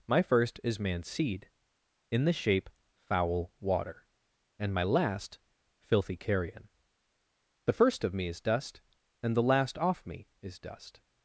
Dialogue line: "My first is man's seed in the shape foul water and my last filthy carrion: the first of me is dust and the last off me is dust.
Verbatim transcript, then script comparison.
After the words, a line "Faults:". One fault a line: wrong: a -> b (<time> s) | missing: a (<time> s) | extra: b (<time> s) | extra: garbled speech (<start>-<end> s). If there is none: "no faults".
"My first is man's seed in the shape foul water and my last filthy carrion: the first of me is dust and the last off me is dust.
Faults:
no faults